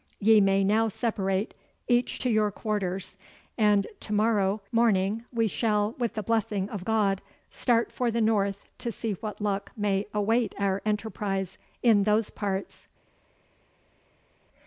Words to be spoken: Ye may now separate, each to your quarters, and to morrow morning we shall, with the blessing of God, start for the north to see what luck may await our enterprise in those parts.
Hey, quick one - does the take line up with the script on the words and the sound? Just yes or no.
yes